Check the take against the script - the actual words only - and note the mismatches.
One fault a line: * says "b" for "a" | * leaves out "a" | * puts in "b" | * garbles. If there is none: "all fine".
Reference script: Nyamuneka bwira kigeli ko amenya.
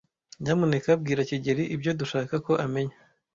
* puts in "ibyo dushaka"